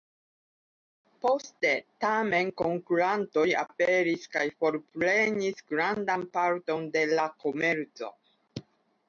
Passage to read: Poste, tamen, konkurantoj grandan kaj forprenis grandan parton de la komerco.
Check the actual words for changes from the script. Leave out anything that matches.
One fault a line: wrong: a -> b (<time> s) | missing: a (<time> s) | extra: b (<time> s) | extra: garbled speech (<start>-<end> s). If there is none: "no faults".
wrong: grandan -> aperis (3.6 s)